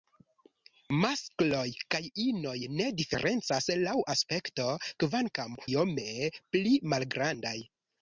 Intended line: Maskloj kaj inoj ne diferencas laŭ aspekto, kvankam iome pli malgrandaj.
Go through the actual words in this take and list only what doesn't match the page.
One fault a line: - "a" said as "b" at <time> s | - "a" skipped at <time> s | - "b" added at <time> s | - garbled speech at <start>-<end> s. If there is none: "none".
none